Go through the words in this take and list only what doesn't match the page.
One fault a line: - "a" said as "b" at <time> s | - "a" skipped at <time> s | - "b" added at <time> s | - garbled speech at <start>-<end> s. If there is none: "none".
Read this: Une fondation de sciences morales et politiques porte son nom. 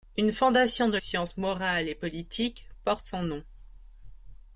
none